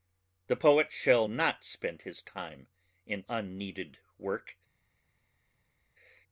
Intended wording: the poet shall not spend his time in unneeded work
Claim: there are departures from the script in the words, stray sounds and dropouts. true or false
false